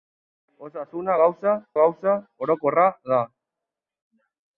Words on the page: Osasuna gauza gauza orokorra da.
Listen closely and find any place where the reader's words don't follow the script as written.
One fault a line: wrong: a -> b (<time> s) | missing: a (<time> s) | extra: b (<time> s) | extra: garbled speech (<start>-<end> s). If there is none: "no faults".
no faults